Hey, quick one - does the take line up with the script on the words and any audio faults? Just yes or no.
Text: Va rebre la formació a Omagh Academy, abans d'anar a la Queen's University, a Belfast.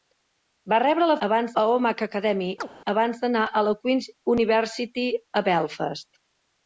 no